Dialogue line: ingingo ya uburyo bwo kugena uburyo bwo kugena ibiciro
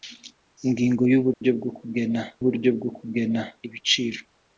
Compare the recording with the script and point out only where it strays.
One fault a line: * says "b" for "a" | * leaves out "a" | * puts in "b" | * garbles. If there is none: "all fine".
all fine